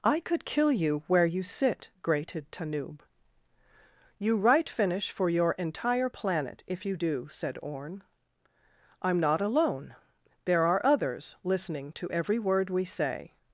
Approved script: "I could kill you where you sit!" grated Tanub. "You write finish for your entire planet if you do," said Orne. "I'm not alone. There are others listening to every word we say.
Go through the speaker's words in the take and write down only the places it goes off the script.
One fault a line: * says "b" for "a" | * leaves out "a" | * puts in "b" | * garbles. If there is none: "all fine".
all fine